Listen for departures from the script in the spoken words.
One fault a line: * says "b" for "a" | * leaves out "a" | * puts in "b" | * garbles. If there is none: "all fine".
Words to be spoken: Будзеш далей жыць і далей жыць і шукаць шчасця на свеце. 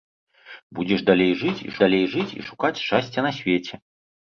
all fine